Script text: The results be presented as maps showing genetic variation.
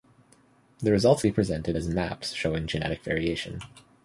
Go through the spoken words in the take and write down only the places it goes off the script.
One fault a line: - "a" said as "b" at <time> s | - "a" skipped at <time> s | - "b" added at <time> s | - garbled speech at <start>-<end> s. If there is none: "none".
none